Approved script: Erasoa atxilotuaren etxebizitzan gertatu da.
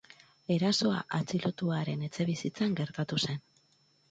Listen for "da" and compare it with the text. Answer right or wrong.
wrong